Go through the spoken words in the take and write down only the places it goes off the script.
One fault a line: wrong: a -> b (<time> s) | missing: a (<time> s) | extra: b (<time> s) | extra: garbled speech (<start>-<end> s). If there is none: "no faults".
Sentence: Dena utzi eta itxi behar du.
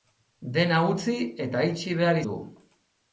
no faults